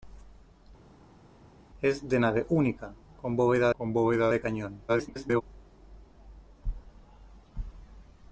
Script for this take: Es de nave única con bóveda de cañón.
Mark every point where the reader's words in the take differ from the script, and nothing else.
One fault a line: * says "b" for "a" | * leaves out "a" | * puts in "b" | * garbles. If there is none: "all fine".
* puts in "con bóveda"
* garbles